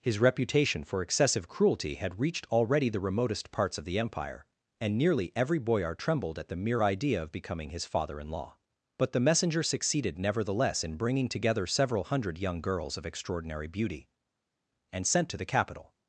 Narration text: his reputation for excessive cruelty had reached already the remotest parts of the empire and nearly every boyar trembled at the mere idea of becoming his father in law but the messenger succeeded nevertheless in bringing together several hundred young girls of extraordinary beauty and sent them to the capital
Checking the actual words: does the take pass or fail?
fail